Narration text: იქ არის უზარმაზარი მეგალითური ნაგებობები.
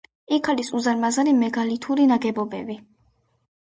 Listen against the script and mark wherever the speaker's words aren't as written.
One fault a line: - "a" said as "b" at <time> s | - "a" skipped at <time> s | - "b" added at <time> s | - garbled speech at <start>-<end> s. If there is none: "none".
none